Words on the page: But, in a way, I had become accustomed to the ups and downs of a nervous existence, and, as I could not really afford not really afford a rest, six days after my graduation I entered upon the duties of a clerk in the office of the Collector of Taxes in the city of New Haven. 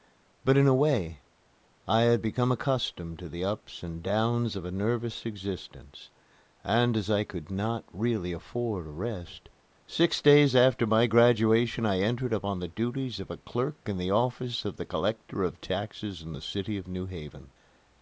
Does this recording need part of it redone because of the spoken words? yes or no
yes